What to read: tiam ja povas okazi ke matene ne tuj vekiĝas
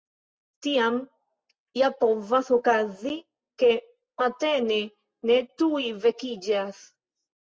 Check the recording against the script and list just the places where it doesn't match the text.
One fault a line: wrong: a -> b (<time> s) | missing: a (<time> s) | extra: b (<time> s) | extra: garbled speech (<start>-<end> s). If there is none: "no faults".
no faults